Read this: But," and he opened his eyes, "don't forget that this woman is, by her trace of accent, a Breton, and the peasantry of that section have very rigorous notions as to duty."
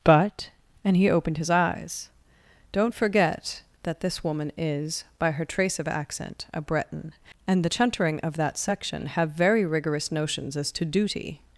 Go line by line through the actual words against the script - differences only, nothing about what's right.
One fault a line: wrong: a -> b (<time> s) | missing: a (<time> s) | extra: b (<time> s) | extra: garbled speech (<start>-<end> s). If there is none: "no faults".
wrong: peasantry -> chuntering (7.7 s)